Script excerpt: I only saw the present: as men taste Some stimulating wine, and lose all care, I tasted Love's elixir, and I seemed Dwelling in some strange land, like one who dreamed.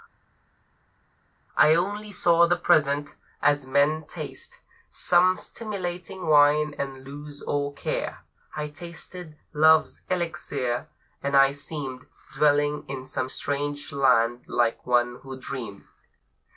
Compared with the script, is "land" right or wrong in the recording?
right